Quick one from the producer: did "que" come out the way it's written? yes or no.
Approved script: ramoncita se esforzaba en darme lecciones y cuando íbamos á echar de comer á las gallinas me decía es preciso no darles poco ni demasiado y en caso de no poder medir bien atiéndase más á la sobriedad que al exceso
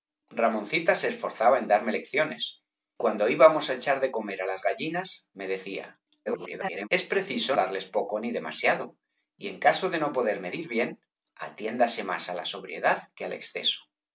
yes